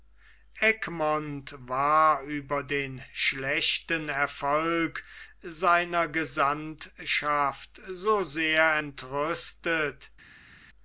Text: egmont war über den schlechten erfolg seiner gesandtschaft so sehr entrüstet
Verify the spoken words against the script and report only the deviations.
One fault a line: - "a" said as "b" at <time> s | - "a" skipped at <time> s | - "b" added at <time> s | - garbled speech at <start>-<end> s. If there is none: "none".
none